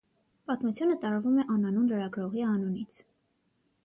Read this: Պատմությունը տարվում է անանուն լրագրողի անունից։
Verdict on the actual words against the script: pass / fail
pass